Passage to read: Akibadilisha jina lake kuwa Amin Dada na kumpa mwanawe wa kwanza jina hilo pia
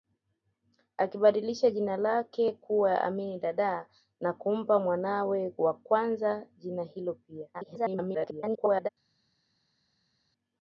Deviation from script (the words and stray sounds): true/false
true